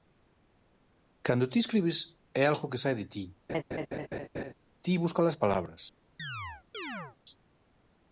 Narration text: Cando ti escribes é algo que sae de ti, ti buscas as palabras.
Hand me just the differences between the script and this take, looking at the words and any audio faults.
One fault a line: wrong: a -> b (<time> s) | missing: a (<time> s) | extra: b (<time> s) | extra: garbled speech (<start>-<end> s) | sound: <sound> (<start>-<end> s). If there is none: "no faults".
sound: laugh (3.5-4.5 s)
sound: chirp (6.2-7.2 s)